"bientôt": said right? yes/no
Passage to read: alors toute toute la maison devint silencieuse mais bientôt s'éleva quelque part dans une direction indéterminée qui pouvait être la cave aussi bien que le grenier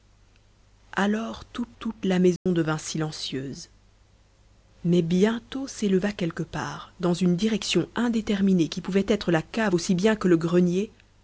yes